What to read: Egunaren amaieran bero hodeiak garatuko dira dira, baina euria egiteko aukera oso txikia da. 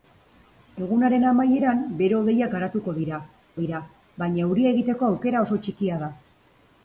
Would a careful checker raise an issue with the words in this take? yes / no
no